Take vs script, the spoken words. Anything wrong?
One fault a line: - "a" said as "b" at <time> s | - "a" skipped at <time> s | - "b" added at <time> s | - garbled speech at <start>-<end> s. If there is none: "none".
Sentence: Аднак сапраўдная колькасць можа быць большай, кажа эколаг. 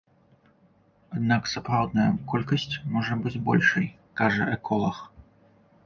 none